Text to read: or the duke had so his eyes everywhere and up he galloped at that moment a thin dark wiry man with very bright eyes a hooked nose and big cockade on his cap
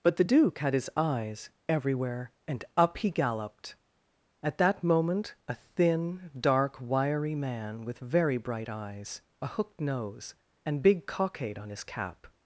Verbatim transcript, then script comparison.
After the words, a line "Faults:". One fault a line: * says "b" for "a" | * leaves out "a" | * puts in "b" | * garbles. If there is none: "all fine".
but the duke had his eyes everywhere and up he galloped at that moment a thin dark wiry man with very bright eyes a hooked nose and big cockade on his cap
Faults:
* says "but" for "or"
* leaves out "so"